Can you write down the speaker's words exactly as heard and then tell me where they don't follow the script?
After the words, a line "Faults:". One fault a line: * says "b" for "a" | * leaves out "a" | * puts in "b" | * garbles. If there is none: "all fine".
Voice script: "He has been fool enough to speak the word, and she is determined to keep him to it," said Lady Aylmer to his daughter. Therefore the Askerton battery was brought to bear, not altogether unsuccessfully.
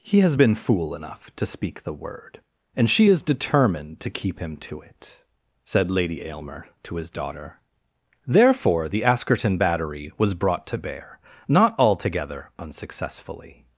"He has been fool enough to speak the word, and she is determined to keep him to it," said Lady Aylmer to his daughter. Therefore the Askerton battery was brought to bear, not altogether unsuccessfully.
Faults:
all fine